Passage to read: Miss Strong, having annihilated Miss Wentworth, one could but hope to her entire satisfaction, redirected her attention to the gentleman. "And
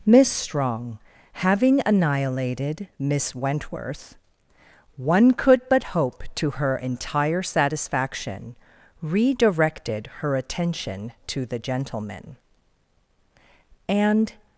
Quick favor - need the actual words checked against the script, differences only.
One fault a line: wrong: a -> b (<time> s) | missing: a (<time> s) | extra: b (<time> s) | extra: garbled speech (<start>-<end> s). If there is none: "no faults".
no faults